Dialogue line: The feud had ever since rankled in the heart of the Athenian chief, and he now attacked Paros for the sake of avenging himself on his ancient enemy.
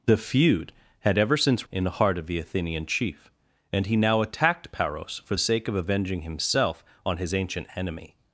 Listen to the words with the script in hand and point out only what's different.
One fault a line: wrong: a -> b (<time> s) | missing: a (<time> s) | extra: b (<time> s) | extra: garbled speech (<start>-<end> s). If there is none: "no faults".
missing: rankled (1.7 s)
missing: the (5.3 s)